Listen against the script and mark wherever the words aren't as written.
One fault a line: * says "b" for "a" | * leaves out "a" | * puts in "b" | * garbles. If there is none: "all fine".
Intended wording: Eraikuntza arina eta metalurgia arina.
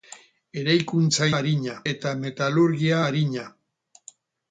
all fine